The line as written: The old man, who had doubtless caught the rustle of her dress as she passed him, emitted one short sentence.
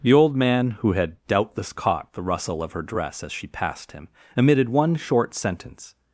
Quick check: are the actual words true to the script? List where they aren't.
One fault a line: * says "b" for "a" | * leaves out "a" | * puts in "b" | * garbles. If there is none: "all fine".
all fine